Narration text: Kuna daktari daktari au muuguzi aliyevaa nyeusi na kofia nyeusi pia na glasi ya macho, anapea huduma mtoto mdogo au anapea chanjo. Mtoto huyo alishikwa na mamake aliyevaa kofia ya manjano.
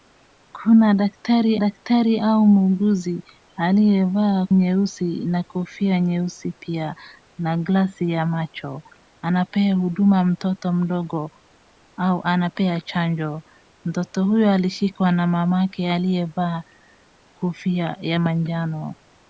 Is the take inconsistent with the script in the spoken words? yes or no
no